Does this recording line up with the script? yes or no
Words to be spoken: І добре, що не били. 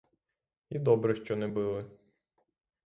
yes